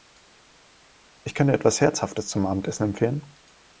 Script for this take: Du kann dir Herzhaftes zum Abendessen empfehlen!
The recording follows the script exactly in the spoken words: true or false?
false